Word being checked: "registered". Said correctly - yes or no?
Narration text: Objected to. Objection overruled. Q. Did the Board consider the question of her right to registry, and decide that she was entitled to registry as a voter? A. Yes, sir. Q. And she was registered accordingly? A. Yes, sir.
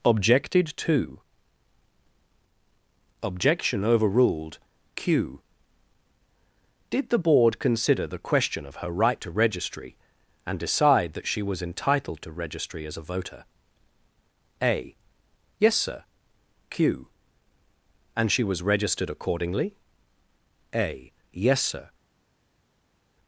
yes